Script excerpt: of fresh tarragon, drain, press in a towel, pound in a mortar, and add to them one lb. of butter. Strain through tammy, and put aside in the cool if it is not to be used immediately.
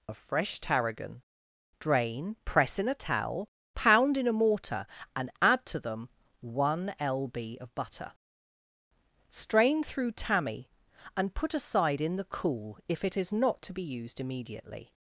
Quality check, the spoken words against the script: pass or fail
pass